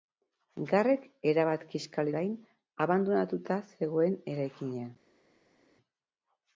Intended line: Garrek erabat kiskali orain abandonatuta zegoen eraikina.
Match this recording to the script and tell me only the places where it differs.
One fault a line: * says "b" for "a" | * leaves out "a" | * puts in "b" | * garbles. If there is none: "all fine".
all fine